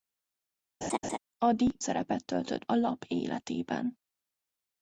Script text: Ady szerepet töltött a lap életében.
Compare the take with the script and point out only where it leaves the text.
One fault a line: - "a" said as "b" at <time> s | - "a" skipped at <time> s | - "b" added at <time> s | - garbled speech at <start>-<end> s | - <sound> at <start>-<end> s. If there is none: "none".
- laugh at 0.8-1.2 s